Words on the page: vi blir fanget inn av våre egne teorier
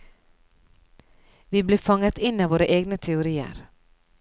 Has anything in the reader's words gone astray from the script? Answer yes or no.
no